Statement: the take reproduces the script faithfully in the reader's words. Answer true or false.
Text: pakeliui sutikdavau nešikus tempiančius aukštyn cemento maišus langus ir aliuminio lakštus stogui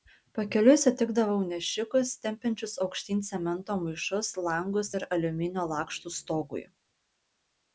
true